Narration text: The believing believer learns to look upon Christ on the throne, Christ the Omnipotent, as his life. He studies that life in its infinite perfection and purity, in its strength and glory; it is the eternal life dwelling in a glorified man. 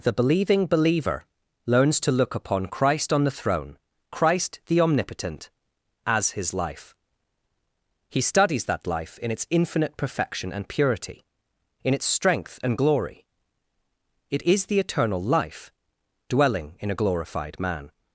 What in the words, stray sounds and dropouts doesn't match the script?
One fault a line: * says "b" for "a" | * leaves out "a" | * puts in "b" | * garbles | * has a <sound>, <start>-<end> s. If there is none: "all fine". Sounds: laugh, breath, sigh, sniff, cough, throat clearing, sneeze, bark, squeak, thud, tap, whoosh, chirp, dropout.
all fine